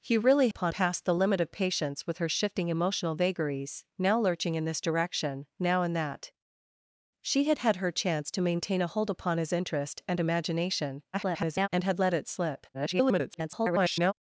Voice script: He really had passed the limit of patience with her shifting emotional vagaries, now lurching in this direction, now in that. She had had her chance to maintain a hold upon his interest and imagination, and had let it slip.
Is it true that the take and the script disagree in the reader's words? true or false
true